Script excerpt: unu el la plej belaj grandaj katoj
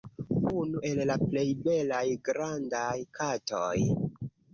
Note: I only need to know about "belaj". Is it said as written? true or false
true